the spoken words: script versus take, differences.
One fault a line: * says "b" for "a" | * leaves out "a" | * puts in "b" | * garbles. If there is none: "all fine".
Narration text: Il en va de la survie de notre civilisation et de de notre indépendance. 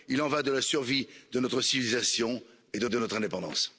all fine